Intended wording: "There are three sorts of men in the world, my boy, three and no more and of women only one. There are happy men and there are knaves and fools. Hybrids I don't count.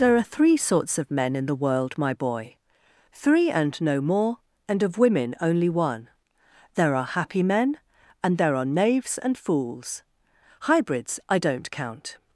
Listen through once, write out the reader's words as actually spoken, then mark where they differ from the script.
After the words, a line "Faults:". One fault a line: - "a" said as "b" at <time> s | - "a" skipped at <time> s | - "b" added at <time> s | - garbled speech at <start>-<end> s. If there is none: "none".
"There are three sorts of men in the world, my boy, three and no more and of women only one. There are happy men and there are knaves and fools. Hybrids I don't count.
Faults:
none